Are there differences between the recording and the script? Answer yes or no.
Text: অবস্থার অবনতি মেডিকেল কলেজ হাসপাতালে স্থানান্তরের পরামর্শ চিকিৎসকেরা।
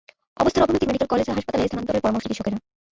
no